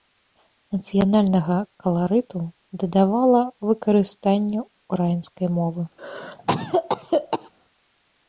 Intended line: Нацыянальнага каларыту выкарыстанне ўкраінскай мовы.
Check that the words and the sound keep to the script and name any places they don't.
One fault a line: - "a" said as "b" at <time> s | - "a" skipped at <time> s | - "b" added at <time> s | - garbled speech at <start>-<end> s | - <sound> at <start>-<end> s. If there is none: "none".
- "дадавала" added at 2.9 s
- cough at 6.0-7.5 s